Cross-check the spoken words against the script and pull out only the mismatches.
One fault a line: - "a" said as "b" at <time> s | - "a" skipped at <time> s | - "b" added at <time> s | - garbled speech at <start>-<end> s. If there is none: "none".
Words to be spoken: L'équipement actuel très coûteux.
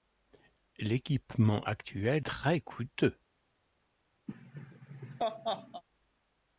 none